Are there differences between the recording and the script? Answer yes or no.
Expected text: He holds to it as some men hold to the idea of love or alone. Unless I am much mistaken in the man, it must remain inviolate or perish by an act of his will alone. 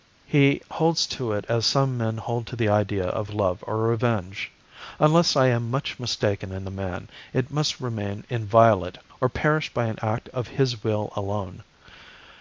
yes